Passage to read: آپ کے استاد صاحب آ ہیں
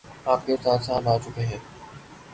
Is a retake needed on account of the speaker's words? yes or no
yes